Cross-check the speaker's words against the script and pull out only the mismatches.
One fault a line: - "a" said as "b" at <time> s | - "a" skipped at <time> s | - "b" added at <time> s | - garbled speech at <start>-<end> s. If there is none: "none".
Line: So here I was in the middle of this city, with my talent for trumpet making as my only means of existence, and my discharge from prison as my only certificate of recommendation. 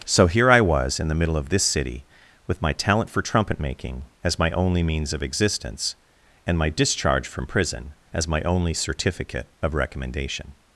none